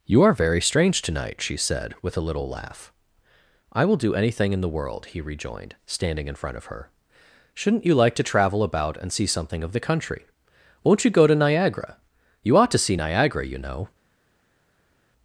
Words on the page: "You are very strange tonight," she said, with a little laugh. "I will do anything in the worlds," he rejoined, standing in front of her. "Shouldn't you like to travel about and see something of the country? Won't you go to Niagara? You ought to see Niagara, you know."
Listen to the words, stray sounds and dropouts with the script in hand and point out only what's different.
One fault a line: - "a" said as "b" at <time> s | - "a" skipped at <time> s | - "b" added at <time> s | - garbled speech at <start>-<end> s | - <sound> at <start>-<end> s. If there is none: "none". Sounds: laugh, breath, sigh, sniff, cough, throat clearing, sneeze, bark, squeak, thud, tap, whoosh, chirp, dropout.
- "worlds" said as "world" at 4.8 s